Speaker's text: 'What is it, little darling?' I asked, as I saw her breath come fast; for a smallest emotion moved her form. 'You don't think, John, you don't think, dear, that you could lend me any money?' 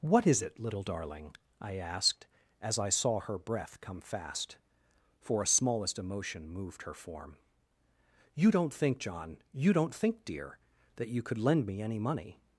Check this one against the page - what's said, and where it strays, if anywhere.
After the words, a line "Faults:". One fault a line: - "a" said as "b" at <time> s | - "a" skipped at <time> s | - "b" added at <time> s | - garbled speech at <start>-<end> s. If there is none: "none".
'What is it, little darling?' I asked, as I saw her breath come fast; for a smallest emotion moved her form. 'You don't think, John, you don't think, dear, that you could lend me any money?'
Faults:
none